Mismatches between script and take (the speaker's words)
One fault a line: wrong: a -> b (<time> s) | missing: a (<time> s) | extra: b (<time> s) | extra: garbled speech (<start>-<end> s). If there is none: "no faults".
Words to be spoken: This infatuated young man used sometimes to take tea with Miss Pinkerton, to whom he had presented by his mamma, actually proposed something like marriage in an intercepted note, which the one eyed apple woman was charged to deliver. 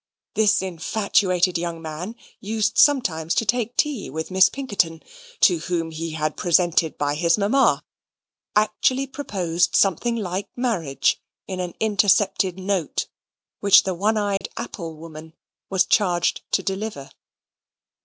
no faults